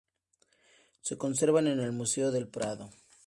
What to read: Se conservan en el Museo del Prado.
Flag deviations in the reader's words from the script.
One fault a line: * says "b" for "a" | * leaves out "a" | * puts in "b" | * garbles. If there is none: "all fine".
all fine